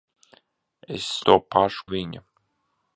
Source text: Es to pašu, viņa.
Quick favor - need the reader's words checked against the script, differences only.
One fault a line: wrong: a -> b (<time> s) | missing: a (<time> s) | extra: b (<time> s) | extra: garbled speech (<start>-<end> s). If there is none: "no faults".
no faults